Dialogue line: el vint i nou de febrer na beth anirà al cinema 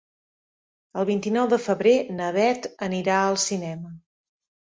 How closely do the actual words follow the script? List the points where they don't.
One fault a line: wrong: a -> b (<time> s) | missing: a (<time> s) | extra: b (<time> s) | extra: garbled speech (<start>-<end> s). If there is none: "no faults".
no faults